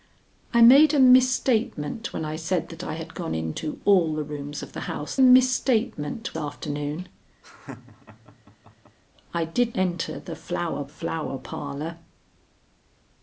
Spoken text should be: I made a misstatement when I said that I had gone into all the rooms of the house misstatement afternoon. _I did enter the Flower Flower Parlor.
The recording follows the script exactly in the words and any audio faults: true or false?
false